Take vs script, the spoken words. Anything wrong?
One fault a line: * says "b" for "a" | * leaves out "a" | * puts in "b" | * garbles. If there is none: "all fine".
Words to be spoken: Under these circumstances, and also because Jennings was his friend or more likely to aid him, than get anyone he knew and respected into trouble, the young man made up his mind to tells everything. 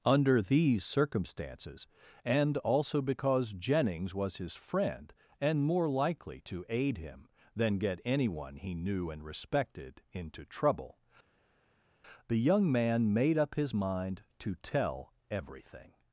* says "and" for "or"
* says "tell" for "tells"